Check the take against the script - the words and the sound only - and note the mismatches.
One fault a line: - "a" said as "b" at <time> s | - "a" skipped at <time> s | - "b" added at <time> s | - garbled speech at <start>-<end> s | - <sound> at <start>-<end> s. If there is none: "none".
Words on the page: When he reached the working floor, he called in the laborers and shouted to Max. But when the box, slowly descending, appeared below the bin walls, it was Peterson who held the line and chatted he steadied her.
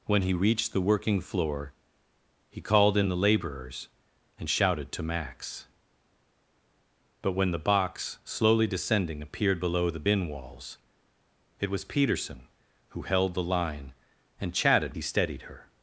none